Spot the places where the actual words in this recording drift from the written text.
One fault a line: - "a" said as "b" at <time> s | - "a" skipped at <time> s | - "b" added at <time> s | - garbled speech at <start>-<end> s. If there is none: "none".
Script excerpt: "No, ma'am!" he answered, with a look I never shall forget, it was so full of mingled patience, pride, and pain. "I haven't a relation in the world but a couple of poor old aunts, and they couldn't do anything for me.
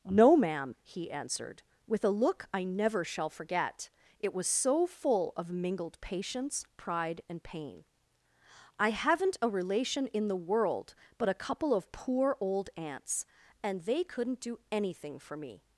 none